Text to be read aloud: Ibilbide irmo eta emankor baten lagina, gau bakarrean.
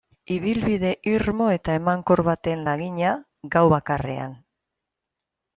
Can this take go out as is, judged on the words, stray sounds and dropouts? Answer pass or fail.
pass